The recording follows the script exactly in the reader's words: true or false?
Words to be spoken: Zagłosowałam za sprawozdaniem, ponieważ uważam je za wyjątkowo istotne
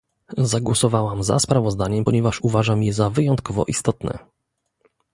true